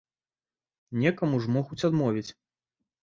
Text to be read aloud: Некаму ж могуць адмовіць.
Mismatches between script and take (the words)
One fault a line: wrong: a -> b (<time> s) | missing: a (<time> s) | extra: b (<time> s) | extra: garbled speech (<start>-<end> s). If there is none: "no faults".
no faults